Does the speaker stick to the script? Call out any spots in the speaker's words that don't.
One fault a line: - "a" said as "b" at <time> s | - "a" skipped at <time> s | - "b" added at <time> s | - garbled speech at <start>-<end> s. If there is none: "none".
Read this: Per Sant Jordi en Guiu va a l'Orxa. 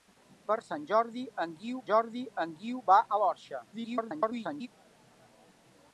- "Jordi en Guiu" added at 1.9 s
- garbled speech at 3.7-4.7 s